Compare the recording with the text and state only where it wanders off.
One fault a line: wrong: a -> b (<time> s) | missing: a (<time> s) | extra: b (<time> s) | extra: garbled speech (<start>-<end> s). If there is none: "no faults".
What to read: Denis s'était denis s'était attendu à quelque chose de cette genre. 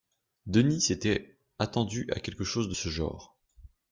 missing: denis s'était (1.4 s)
wrong: cette -> ce (2.7 s)